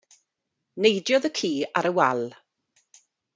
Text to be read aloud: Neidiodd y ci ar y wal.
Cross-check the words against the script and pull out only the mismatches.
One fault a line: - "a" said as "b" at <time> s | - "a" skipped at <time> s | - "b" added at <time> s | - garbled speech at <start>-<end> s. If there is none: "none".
none